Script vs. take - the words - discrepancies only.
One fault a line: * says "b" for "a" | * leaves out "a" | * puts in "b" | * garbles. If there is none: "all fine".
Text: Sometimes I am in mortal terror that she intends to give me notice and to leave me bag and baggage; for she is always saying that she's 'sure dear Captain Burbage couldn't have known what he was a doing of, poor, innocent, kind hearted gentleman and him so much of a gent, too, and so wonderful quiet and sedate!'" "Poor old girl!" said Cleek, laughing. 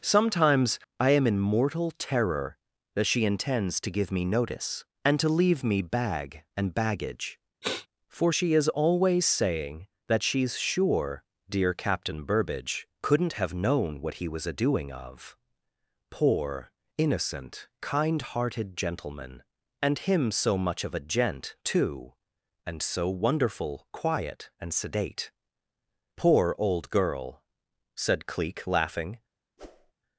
all fine